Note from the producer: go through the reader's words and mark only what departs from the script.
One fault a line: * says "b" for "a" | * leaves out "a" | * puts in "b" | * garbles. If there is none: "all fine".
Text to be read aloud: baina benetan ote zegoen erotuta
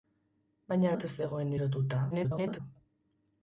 * leaves out "benetan"
* garbles